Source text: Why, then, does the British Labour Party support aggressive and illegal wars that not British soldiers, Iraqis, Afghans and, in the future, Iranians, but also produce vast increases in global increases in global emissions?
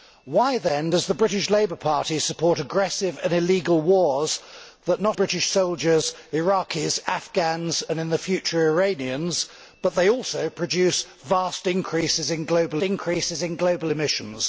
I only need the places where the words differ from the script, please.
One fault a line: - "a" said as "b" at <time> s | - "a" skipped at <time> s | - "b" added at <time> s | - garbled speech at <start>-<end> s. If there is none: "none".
none